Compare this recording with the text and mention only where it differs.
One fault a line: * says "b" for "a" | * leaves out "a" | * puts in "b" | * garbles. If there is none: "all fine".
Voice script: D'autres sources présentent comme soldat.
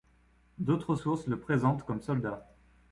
* puts in "le"